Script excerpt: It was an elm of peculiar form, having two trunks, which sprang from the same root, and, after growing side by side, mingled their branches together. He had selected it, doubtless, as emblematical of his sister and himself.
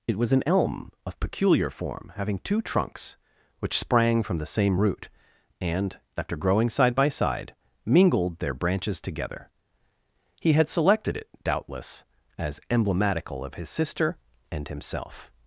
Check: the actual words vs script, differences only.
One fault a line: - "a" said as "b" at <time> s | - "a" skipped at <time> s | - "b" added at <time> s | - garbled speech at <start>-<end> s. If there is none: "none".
none